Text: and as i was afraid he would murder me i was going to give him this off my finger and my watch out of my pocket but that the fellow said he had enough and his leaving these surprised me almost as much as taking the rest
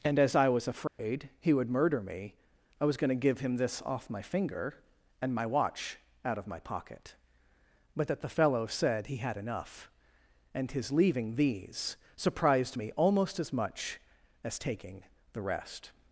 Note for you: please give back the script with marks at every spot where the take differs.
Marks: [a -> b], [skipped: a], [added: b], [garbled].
and as i was afraid he would murder me i was going to give him this off my finger and my watch out of my pocket but that the fellow said he had enough and his leaving these surprised me almost as much as taking the rest